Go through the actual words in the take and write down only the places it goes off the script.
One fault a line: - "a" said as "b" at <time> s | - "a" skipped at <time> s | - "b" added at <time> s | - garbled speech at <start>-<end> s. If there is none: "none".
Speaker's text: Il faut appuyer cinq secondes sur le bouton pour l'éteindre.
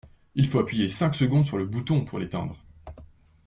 none